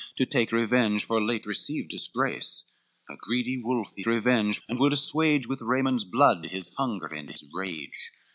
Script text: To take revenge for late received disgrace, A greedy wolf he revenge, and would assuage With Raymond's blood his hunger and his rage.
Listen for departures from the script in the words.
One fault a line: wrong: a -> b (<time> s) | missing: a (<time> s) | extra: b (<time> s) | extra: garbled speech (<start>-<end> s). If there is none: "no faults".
no faults